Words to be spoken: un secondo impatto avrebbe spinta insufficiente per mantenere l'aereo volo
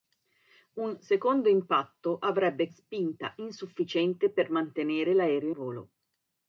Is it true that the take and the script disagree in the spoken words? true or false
false